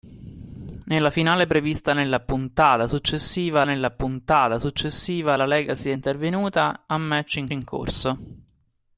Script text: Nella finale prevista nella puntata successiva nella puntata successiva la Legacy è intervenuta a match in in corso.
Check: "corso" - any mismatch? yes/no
no